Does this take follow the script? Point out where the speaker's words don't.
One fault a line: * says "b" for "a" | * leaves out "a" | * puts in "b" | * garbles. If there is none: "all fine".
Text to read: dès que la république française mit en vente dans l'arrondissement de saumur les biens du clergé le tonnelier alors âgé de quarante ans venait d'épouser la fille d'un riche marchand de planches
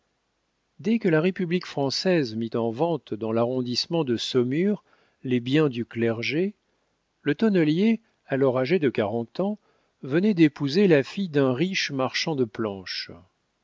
all fine